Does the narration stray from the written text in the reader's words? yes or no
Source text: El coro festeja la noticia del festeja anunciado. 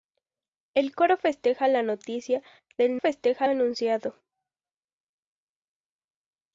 no